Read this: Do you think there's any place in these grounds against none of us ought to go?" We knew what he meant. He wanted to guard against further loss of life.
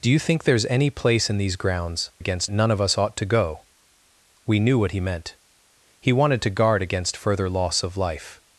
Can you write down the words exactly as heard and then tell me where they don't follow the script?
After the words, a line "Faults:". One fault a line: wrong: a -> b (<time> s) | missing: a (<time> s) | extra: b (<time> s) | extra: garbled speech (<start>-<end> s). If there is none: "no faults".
Do you think there's any place in these grounds against none of us ought to go?" We knew what he meant. He wanted to guard against further loss of life.
Faults:
no faults